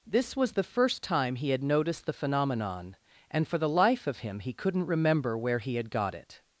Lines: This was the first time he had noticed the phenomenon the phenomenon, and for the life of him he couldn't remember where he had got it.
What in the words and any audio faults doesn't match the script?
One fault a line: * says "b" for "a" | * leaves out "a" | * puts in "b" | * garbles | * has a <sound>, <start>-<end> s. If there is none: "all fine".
* leaves out "the phenomenon"